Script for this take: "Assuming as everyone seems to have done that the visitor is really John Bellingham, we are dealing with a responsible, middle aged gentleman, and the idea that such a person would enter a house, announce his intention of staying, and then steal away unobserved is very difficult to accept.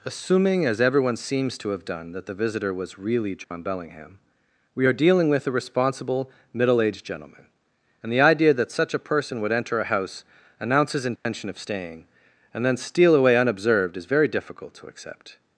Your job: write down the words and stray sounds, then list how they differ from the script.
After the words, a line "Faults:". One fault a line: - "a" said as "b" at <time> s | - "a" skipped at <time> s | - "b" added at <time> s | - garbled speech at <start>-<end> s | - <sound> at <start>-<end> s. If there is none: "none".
"Assuming as everyone seems to have done that the visitor was really John Bellingham, we are dealing with a responsible, middle aged gentleman, and the idea that such a person would enter a house, announce his intention of staying, and then steal away unobserved is very difficult to accept.
Faults:
- "is" said as "was" at 2.7 s
- dropout at 3.4-3.5 s
- dropout at 11.2-11.3 s